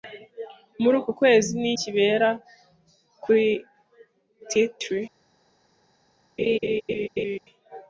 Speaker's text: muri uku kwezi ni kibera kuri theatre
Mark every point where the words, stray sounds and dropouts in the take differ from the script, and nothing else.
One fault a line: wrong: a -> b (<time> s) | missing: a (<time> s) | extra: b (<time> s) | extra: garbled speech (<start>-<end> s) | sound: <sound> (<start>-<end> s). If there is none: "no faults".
sound: laugh (6.4-7.4 s)